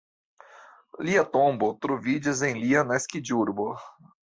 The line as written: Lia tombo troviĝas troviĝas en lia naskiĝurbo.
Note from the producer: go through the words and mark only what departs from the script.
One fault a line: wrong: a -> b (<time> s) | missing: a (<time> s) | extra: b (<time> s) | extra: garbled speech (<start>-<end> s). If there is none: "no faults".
missing: troviĝas (2.4 s)